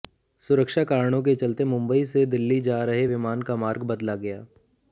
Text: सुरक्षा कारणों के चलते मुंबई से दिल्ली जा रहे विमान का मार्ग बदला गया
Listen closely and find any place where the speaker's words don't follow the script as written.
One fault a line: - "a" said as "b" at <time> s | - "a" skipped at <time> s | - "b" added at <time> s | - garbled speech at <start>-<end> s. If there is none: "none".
none